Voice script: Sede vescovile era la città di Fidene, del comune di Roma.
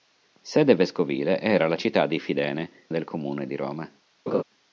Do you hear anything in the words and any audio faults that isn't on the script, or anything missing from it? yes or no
yes